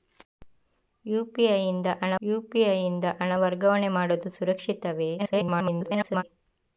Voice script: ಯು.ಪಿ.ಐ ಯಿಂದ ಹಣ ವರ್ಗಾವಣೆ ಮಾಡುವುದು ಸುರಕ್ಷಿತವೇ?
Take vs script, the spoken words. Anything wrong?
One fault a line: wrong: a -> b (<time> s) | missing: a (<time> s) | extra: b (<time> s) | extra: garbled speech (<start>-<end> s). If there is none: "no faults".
extra: ಯು.ಪಿ.ಐ ಯಿಂದ ಹಣ (2.2 s)
extra: garbled speech (5.2-6.2 s)